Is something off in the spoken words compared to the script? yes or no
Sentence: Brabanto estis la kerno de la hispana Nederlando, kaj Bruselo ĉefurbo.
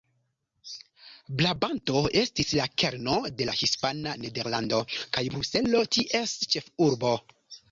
yes